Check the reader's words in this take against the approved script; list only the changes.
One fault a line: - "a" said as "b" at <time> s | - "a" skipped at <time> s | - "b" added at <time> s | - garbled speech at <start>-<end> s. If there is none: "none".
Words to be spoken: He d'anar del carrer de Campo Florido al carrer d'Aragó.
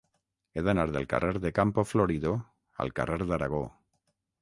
none